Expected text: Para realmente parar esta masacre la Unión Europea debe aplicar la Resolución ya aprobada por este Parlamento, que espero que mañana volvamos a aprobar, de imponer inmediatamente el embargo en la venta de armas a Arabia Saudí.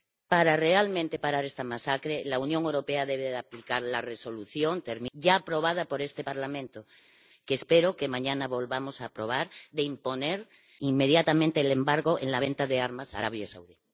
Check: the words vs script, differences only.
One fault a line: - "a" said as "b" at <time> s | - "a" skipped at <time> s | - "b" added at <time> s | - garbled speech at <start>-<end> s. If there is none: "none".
none